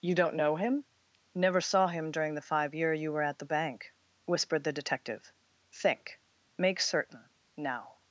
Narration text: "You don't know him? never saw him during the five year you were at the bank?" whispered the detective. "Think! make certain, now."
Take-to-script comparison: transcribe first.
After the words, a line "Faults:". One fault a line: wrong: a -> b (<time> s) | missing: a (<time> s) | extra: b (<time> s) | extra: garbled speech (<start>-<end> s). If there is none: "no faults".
"You don't know him? never saw him during the five year you were at the bank?" whispered the detective. "Think! make certain, now."
Faults:
no faults